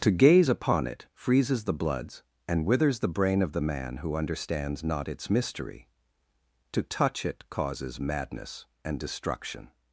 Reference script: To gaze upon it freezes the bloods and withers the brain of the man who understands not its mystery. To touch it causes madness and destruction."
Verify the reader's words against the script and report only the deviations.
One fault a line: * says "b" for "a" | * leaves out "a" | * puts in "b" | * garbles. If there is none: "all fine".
all fine